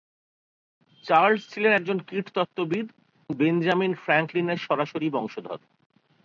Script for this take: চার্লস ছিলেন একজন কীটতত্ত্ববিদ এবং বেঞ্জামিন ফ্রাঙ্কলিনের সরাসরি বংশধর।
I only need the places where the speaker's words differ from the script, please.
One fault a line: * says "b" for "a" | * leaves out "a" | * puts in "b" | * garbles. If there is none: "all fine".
* leaves out "এবং"